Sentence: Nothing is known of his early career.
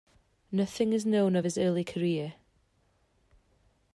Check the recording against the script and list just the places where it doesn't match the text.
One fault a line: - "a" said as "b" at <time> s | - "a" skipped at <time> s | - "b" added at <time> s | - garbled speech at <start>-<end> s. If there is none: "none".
none